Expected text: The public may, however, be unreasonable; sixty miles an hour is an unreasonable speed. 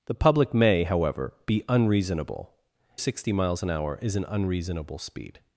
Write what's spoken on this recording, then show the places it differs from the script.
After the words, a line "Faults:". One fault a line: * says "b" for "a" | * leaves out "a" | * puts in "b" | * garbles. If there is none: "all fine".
The public may, however, be unreasonable; sixty miles an hour is an unreasonable speed.
Faults:
all fine